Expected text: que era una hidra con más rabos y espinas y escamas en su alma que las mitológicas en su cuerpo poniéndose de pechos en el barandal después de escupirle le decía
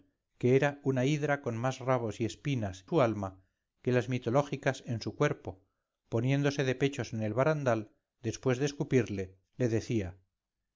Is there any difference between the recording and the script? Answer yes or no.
yes